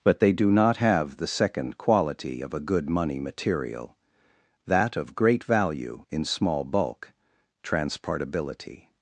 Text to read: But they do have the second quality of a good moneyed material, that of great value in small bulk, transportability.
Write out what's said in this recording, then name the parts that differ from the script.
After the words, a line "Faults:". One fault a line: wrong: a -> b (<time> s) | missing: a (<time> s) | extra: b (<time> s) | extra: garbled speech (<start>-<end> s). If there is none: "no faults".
But they do not have the second quality of a good money material, that of great value in small bulk, transportability.
Faults:
extra: not (0.5 s)
wrong: moneyed -> money (2.9 s)